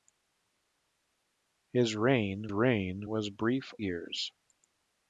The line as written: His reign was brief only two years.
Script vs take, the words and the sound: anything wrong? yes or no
yes